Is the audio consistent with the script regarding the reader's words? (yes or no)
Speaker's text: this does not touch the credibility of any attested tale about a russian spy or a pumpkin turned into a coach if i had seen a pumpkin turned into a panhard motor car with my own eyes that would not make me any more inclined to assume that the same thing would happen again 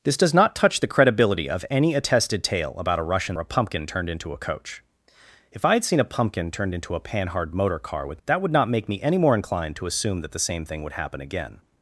no